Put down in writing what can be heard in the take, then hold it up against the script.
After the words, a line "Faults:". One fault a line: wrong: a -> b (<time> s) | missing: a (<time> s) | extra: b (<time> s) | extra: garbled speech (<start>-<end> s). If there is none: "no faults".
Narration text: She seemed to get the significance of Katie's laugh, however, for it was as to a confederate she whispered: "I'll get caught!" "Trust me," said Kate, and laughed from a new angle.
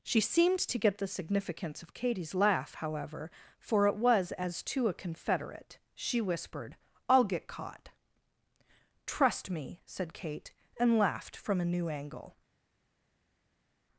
She seemed to get the significance of Katie's laugh, however, for it was as to a confederate she whispered: "I'll get caught!" "Trust me," said Kate, and laughed from a new angle.
Faults:
no faults